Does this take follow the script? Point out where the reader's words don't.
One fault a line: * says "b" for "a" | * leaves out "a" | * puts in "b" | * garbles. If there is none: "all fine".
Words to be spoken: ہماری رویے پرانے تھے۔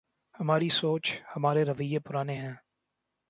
* puts in "سوچ ہمارے"
* says "ہیں" for "تھے"